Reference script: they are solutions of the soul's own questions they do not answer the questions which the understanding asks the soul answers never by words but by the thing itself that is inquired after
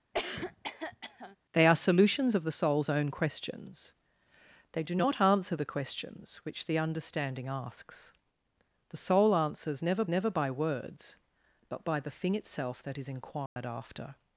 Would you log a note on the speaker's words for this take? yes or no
yes